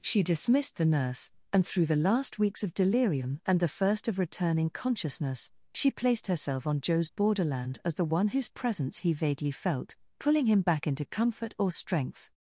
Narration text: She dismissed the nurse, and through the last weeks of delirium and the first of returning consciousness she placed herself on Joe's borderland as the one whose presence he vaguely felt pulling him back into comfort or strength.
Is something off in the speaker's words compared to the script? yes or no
no